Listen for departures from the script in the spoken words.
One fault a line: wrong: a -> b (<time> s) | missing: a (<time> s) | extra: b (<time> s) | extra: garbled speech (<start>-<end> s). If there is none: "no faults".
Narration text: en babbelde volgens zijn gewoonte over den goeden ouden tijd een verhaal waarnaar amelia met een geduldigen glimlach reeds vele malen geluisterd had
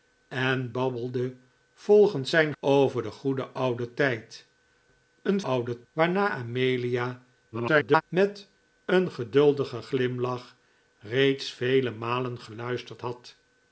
missing: gewoonte (2.5 s)
wrong: verhaal -> ouden (5.4 s)
extra: garbled speech (7.5-8.0 s)